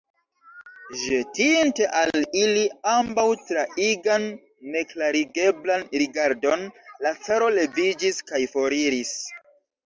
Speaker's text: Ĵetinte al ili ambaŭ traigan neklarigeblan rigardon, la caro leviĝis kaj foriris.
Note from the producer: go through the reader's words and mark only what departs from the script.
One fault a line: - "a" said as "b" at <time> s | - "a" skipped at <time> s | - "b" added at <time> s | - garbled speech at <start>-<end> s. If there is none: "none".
none